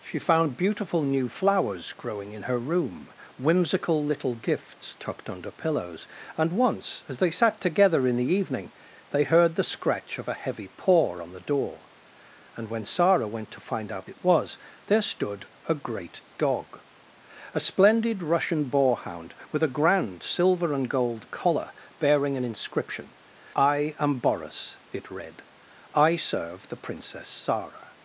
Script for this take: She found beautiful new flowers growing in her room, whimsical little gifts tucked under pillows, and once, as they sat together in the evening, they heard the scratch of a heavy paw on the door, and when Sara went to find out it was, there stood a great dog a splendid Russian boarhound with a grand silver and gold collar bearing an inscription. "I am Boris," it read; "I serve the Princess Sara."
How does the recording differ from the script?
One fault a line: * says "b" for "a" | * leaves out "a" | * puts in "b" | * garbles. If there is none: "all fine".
all fine